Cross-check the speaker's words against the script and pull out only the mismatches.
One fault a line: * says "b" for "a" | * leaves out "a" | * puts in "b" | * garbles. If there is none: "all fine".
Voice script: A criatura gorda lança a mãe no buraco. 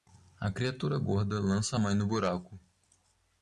all fine